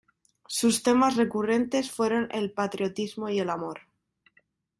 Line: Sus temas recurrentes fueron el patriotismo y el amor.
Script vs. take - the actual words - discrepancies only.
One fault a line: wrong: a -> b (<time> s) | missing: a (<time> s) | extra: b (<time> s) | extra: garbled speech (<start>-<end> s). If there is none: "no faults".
no faults